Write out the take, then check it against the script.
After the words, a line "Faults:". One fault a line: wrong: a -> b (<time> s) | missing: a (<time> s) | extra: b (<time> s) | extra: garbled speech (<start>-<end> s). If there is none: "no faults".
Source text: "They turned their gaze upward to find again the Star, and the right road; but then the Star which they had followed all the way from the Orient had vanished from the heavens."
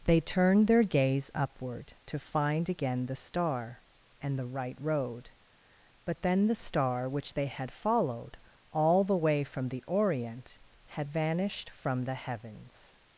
"They turned their gaze upward to find again the Star, and the right road; but then the Star which they had followed all the way from the Orient had vanished from the heavens."
Faults:
no faults